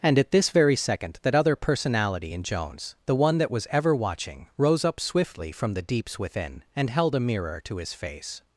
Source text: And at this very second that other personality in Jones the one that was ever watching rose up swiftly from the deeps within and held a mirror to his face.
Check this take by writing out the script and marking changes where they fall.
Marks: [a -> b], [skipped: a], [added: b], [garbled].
And at this very second that other personality in Jones the one that was ever watching rose up swiftly from the deeps within and held a mirror to his face.